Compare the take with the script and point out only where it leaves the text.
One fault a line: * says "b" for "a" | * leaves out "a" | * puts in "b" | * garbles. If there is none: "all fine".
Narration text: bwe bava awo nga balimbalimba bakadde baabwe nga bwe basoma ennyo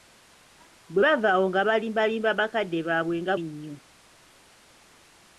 * leaves out "bwe basoma"